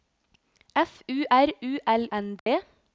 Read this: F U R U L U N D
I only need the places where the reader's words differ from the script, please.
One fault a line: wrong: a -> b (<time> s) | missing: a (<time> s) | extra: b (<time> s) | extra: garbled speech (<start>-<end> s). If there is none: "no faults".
missing: U (2.1 s)